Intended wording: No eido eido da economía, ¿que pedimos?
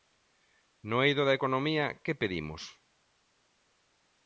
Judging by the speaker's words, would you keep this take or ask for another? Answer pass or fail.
fail